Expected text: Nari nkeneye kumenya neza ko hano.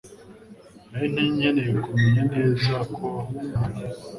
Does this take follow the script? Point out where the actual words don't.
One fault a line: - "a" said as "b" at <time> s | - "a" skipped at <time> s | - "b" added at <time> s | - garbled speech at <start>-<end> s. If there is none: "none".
none